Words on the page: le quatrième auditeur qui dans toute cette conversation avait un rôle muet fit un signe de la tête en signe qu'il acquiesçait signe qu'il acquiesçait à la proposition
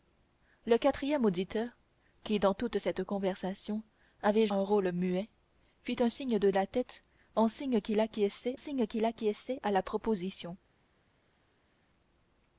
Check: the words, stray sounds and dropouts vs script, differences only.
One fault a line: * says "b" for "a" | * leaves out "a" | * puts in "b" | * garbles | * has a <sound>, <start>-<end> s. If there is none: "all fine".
all fine